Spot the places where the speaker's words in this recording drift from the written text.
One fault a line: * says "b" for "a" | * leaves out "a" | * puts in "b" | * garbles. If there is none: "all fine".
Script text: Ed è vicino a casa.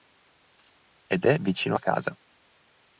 all fine